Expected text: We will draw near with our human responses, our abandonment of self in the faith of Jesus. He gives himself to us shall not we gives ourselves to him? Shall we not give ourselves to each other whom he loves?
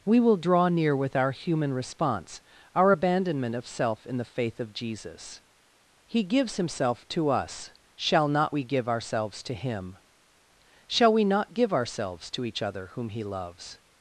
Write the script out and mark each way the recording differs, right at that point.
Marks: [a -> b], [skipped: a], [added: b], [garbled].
We will draw near with our human [responses, -> response] our abandonment of self in the faith of Jesus. He gives himself to us shall not we [gives -> give] ourselves to him? Shall we not give ourselves to each other whom he loves?